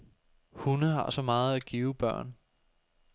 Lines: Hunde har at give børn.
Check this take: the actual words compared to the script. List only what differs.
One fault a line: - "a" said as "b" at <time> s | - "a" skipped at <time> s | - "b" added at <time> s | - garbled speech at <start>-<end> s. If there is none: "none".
- "så meget" added at 1.1 s